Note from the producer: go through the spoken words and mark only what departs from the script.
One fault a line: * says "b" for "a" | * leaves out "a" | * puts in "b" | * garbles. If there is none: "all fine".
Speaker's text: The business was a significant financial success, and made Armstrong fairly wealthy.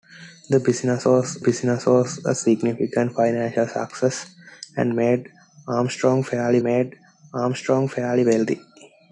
* puts in "business was"
* puts in "made Armstrong fairly"